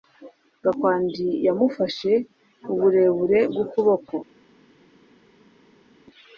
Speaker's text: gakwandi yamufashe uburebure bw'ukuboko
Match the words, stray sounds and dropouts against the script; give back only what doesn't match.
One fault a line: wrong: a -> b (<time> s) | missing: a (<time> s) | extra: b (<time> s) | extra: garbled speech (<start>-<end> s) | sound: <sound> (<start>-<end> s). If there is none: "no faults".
no faults